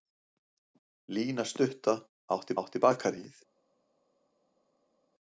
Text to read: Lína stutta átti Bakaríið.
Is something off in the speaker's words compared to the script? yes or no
yes